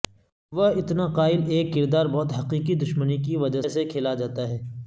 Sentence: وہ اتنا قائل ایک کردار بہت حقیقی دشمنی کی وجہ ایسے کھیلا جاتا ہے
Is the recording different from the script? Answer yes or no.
no